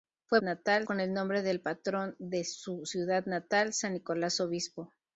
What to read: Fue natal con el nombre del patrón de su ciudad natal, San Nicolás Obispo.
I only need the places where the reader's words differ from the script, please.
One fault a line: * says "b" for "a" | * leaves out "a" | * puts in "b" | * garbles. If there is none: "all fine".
all fine